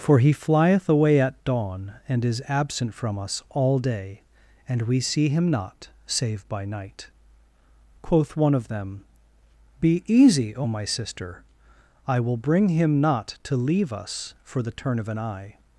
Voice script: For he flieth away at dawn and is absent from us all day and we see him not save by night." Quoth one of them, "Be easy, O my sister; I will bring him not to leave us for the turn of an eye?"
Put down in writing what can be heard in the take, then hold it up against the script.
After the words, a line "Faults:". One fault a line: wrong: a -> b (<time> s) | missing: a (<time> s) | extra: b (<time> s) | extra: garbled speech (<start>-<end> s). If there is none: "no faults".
For he flieth away at dawn and is absent from us all day and we see him not save by night." Quoth one of them, "Be easy, O my sister; I will bring him not to leave us for the turn of an eye?"
Faults:
no faults